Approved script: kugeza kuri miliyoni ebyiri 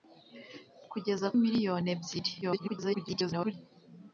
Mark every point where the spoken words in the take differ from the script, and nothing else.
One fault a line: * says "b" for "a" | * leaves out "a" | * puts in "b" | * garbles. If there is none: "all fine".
* leaves out "kuri"
* garbles